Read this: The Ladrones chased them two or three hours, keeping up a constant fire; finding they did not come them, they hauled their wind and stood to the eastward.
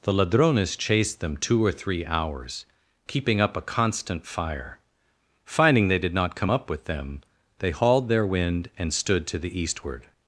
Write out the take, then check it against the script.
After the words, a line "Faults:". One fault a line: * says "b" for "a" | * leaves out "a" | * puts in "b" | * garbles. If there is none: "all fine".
The Ladrones chased them two or three hours, keeping up a constant fire; finding they did not come up with them, they hauled their wind and stood to the eastward.
Faults:
* puts in "up with"